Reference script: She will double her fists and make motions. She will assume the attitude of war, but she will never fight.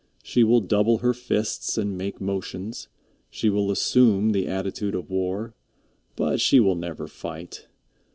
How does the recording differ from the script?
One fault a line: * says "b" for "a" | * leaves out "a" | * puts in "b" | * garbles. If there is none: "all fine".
all fine